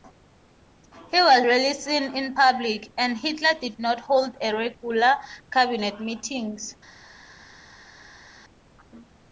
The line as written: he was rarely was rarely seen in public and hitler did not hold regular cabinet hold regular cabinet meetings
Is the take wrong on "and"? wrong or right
right